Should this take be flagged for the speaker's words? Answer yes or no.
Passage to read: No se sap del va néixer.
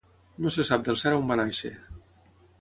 yes